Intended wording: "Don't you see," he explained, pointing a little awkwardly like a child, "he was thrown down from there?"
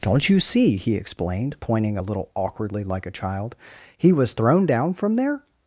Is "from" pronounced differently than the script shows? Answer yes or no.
no